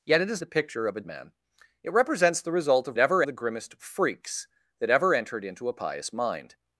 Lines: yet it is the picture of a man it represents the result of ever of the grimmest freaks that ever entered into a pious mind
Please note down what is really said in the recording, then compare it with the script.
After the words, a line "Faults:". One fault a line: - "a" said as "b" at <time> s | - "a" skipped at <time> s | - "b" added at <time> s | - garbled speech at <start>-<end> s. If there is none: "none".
yet it is the picture of a man it represents the result of ever of the grimmest freaks that ever entered into a pious mind
Faults:
none